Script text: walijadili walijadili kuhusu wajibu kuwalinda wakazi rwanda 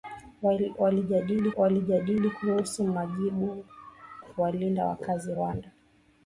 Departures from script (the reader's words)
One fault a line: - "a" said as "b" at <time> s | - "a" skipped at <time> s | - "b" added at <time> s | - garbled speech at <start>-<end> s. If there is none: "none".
none